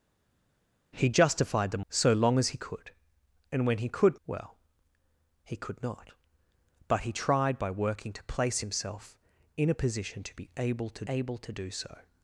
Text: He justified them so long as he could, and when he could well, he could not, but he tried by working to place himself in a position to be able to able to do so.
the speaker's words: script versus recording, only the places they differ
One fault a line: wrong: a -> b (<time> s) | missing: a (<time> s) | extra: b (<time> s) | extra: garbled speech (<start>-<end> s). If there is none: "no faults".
no faults